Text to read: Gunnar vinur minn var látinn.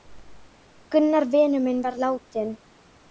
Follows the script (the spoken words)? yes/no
yes